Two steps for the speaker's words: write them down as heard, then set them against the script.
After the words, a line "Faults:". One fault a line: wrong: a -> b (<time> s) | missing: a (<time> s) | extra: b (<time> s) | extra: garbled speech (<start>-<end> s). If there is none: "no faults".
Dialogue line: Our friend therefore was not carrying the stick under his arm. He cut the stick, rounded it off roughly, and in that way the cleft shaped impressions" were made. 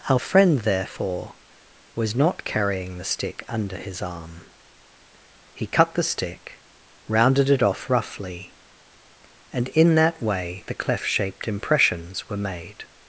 Our friend therefore was not carrying the stick under his arm. He cut the stick, rounded it off roughly, and in that way the cleft shaped impressions" were made.
Faults:
no faults